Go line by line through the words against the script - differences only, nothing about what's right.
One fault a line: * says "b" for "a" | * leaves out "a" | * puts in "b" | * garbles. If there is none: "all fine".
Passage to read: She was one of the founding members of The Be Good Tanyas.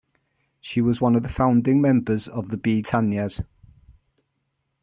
* leaves out "Good"